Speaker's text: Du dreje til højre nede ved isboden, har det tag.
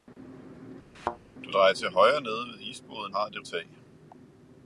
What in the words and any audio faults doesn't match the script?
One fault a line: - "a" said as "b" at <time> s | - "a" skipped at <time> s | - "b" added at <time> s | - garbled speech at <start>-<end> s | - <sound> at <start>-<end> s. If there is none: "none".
- thud at 0.9-1.2 s